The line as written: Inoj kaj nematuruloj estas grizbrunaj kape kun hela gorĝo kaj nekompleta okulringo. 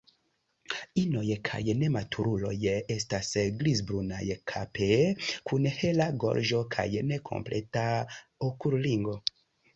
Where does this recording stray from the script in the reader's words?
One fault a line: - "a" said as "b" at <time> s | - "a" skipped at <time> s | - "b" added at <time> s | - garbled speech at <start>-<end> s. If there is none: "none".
none